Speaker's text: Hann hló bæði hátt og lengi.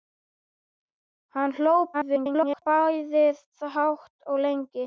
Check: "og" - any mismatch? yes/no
no